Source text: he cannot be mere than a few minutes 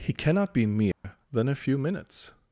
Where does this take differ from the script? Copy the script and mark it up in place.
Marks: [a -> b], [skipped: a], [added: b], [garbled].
he cannot be mere than a few minutes